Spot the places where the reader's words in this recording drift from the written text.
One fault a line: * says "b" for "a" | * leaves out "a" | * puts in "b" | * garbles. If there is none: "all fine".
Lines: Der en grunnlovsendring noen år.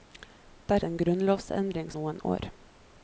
all fine